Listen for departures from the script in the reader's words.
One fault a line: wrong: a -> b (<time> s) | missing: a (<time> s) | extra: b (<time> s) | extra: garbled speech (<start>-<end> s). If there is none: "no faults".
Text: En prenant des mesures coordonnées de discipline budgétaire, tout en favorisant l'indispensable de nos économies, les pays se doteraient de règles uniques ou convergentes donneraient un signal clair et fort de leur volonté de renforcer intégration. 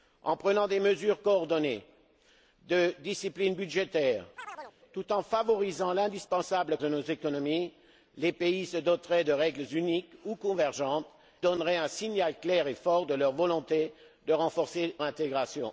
no faults